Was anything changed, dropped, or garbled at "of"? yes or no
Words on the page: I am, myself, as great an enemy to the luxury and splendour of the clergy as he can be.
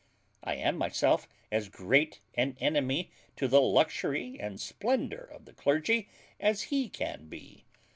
no